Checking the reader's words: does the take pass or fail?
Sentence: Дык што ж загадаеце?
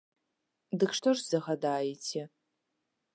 pass